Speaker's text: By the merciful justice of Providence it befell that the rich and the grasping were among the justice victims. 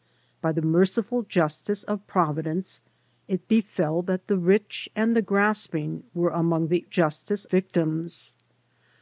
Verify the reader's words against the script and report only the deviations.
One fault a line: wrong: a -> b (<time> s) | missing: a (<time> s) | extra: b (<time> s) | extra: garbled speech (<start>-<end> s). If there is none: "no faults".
no faults